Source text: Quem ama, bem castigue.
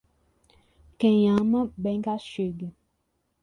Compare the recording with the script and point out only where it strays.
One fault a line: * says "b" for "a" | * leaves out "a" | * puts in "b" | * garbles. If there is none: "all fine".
all fine